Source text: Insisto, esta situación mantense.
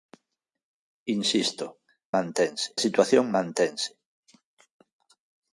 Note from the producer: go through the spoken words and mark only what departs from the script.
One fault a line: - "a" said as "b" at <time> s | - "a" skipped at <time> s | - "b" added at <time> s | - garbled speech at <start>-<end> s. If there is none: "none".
- "esta" said as "mantense" at 2.1 s